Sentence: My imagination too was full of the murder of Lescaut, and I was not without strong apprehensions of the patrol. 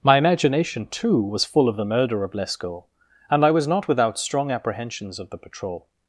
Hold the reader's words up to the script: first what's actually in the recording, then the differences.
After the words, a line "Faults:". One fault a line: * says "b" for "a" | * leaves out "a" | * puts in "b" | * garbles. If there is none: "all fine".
My imagination too was full of the murder of Lescaut, and I was not without strong apprehensions of the patrol.
Faults:
all fine